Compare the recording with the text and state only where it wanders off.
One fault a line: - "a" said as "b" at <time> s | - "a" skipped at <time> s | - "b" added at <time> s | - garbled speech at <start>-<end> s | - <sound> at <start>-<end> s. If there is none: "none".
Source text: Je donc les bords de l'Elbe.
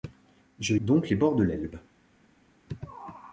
none